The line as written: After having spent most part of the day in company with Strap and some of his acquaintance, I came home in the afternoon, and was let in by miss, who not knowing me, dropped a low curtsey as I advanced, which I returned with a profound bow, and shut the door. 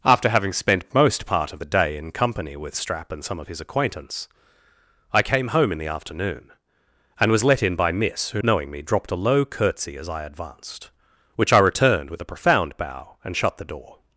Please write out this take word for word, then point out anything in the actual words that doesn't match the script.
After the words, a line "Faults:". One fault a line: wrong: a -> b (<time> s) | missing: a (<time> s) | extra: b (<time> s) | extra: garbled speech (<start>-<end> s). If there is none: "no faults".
After having spent most part of the day in company with Strap and some of his acquaintance, I came home in the afternoon, and was let in by miss, who knowing me, dropped a low curtsey as I advanced, which I returned with a profound bow, and shut the door.
Faults:
missing: not (8.4 s)